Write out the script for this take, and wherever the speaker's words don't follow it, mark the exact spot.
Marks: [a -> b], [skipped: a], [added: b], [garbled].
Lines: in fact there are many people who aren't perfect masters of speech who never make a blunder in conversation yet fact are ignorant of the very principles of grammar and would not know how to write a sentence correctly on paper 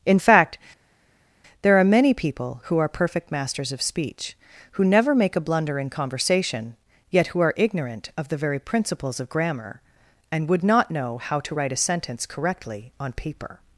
in fact there are many people who [aren't -> are] perfect masters of speech who never make a blunder in conversation yet [fact -> who] are ignorant of the very principles of grammar and would not know how to write a sentence correctly on paper